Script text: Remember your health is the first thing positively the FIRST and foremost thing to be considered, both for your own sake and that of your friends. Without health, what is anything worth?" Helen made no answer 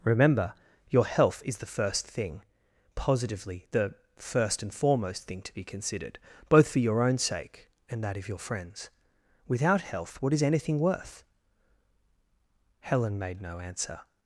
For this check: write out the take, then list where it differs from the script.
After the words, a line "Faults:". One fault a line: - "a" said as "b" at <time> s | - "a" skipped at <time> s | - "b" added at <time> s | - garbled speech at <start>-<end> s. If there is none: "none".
Remember your health is the first thing positively the FIRST and foremost thing to be considered, both for your own sake and that of your friends. Without health, what is anything worth?" Helen made no answer
Faults:
none